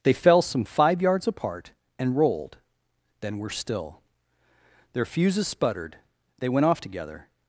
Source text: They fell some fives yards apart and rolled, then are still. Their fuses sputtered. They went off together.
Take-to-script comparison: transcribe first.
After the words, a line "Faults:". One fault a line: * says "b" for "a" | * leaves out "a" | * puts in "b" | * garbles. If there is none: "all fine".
They fell some five yards apart and rolled, then were still. Their fuses sputtered. They went off together.
Faults:
* says "five" for "fives"
* says "were" for "are"